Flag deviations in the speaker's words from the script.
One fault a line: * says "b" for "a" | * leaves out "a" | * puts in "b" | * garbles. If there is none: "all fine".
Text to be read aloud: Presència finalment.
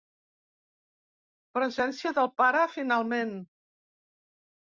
* puts in "del pare"